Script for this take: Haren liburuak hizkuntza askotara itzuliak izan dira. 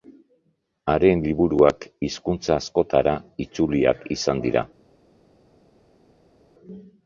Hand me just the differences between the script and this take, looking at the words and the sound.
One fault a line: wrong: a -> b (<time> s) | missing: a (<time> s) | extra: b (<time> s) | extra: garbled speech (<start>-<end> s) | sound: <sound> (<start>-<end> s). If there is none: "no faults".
no faults